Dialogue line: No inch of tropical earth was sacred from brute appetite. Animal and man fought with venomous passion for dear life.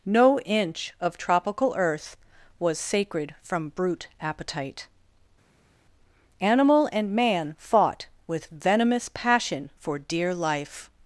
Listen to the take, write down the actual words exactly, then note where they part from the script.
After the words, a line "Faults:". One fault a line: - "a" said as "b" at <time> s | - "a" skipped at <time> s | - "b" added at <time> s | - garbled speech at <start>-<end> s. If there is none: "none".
No inch of tropical earth was sacred from brute appetite. Animal and man fought with venomous passion for dear life.
Faults:
none